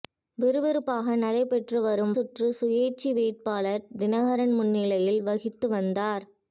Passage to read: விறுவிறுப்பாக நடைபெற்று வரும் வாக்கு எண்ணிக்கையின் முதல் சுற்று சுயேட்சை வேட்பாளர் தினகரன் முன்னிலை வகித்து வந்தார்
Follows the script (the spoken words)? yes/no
no